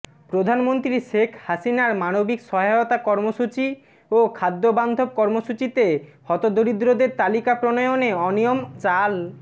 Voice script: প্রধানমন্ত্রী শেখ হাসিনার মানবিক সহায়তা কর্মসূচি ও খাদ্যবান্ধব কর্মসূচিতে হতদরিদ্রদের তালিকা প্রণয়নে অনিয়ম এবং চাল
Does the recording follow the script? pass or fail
fail